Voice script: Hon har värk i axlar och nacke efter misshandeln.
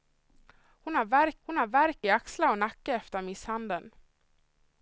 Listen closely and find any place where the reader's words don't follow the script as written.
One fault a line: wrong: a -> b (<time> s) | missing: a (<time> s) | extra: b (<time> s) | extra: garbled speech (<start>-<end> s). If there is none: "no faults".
extra: hon har värk (1.5 s)